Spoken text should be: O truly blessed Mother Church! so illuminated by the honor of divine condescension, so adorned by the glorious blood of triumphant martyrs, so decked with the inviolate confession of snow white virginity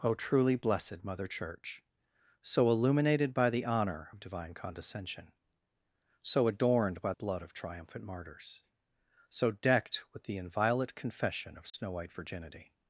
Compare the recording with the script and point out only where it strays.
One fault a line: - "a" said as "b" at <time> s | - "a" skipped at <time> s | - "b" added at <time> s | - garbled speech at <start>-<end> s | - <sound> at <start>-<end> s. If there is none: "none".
- "the glorious" skipped at 7.1 s
- dropout at 11.7-11.7 s